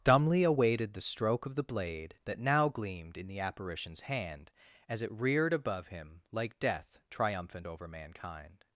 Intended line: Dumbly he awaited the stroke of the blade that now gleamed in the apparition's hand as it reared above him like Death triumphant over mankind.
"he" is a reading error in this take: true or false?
true